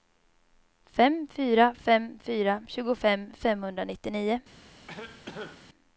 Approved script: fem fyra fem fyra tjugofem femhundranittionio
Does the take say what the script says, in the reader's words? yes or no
yes